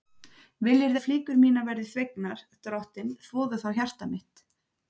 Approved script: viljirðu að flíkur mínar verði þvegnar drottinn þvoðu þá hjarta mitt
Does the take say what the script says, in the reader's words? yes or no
yes